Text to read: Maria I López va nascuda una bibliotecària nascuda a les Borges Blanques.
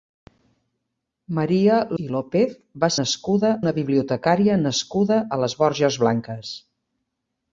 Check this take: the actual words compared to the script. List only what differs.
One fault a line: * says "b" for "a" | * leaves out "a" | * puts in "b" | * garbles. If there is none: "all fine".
all fine